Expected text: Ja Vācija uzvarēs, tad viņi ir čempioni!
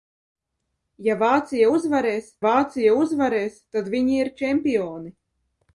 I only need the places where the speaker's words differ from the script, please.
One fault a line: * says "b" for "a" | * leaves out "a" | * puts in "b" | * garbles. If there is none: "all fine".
* puts in "Vācija uzvarēs"